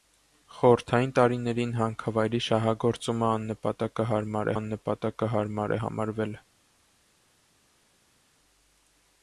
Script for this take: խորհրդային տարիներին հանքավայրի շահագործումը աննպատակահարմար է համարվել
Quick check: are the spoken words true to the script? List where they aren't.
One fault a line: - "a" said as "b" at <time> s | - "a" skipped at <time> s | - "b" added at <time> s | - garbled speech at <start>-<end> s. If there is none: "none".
- "աննպատակահարմար" added at 4.5 s